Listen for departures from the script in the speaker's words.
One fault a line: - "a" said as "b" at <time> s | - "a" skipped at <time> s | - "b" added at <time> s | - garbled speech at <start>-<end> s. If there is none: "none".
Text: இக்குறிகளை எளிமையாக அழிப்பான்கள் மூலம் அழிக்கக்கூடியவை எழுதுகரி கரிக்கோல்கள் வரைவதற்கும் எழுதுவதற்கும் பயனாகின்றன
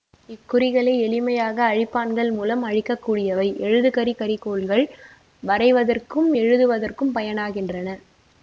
none